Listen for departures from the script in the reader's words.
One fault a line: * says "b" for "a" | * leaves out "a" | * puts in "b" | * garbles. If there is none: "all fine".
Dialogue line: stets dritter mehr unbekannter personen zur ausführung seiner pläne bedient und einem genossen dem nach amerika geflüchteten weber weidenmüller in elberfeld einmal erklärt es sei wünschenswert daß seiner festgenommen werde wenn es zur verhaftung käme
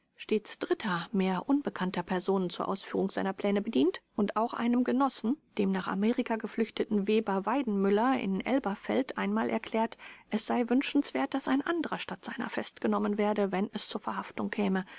* puts in "auch"
* puts in "ein anderer statt"